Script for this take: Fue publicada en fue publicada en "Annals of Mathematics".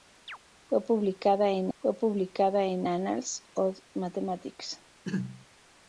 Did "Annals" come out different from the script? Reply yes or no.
no